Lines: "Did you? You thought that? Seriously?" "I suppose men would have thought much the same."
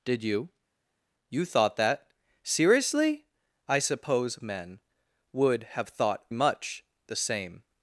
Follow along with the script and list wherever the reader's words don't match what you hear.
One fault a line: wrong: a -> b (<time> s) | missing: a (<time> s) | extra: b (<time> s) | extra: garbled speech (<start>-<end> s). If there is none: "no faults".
no faults